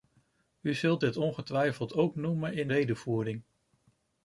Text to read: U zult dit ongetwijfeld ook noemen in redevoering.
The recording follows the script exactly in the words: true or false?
true